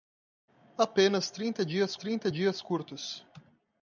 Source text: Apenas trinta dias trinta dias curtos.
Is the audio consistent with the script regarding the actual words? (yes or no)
yes